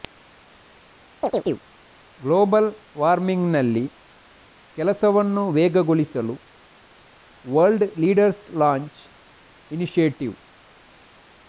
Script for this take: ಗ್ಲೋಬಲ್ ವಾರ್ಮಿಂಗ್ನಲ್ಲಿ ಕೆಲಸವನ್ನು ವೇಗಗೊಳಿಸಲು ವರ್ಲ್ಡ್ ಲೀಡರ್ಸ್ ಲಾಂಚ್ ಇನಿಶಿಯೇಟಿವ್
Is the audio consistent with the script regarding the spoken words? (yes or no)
yes